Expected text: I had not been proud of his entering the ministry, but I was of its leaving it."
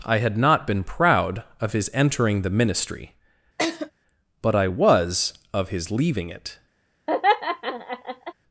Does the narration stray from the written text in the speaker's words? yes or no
yes